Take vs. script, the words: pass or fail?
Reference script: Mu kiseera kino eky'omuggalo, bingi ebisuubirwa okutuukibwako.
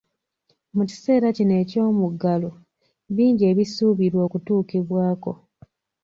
pass